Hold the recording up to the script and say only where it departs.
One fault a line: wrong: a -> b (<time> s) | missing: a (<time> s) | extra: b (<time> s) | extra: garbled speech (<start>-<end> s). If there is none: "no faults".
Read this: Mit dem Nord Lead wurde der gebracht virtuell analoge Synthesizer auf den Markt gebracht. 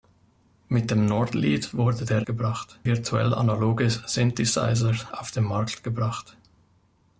no faults